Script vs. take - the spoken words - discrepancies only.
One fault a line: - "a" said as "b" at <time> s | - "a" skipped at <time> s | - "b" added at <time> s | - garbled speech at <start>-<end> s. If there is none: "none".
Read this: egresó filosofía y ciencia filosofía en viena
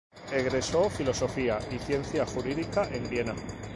- "filosofía" said as "jurídica" at 2.2 s